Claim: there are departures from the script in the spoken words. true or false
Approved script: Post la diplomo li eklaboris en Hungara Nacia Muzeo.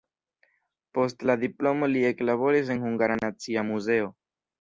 false